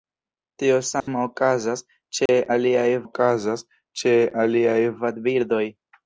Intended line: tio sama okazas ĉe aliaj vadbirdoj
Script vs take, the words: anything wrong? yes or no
yes